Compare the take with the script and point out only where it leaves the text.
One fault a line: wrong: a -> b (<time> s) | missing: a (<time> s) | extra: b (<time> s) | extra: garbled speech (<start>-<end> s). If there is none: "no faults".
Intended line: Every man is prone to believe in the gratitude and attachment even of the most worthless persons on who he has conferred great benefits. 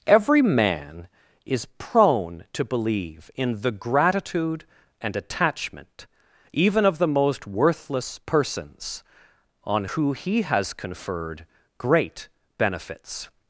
no faults